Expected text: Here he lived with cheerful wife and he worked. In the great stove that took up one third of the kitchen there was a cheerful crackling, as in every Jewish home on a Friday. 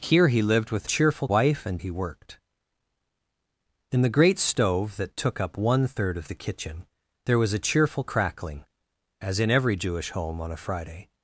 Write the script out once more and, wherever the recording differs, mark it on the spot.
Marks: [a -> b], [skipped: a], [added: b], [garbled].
Here he lived with cheerful wife and he worked. In the great stove that took up one third of the kitchen there was a cheerful crackling, as in every Jewish home on a Friday.